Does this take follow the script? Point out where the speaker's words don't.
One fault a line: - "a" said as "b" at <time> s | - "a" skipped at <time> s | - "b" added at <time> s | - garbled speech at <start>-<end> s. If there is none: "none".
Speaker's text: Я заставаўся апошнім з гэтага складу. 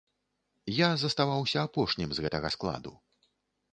none